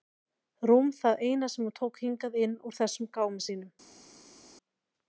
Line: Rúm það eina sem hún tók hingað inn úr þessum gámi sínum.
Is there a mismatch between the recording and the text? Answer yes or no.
no